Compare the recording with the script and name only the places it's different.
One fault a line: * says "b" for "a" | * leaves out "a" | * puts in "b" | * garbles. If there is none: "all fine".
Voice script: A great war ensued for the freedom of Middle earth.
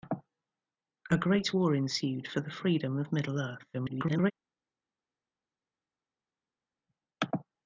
* garbles